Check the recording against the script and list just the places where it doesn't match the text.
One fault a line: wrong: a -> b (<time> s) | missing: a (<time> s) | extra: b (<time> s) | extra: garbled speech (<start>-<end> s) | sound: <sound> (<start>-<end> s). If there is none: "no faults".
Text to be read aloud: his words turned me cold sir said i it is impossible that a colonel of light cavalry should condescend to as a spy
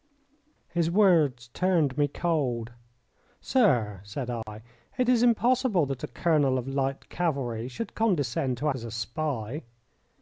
sound: dropout (4.4-4.5 s)